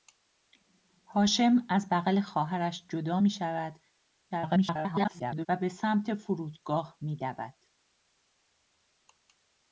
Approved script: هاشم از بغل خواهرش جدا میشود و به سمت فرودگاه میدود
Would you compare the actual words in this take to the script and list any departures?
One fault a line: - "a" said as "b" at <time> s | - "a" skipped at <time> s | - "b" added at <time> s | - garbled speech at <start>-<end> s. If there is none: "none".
- garbled speech at 4.3-5.5 s